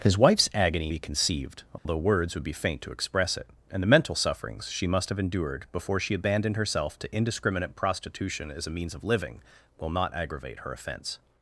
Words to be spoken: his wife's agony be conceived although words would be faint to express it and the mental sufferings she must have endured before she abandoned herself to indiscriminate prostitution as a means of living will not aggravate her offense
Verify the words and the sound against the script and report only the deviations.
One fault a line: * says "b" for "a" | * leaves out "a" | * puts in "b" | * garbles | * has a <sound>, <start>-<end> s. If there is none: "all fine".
* has a dropout, 1.8-1.9 s